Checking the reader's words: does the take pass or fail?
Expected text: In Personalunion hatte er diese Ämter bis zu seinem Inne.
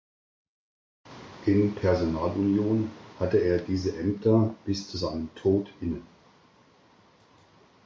fail